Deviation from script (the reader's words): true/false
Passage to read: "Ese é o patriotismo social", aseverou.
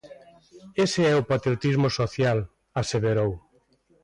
false